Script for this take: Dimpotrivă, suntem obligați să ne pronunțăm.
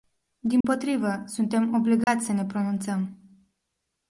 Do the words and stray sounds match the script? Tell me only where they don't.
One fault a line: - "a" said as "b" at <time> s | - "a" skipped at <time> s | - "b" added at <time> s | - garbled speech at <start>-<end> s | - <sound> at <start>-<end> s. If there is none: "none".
- dropout at 0.6-0.6 s
- dropout at 2.0-2.1 s